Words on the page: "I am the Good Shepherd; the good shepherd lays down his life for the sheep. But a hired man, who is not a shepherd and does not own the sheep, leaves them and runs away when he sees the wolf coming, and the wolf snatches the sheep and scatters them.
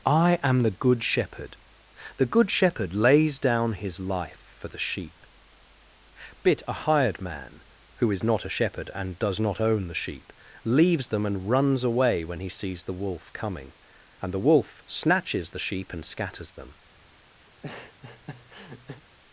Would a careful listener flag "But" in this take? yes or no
yes